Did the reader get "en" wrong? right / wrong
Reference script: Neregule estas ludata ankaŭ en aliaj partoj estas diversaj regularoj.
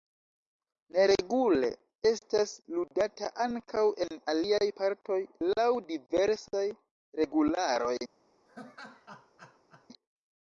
right